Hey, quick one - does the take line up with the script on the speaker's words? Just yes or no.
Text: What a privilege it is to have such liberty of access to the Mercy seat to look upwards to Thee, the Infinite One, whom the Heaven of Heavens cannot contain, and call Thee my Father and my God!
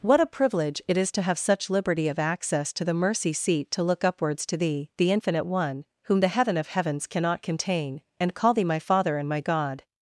yes